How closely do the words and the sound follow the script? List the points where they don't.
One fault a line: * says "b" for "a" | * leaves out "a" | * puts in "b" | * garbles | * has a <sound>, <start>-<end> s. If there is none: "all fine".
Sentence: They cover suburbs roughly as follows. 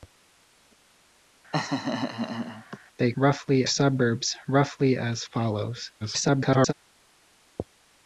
* has a laugh, 1.5-2.8 s
* says "roughly" for "cover"
* garbles